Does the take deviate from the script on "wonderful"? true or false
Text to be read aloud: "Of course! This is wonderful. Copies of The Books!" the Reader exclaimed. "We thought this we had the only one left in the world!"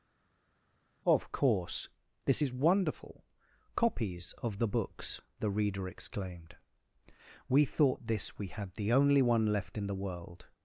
false